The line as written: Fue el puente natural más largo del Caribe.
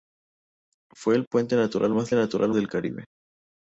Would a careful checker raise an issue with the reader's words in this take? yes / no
yes